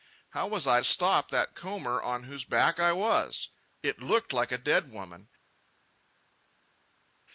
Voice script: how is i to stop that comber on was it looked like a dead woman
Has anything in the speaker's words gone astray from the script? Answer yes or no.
yes